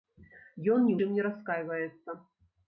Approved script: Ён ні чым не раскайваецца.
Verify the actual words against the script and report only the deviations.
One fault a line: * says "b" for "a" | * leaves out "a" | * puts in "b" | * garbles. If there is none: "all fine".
all fine